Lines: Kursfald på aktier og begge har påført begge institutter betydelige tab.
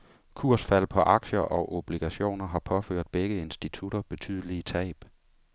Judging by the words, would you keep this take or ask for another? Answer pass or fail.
fail